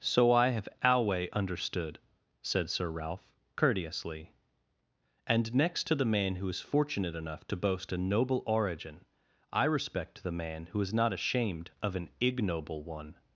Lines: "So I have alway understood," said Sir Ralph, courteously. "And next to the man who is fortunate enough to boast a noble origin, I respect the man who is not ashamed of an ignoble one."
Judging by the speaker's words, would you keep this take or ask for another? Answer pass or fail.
pass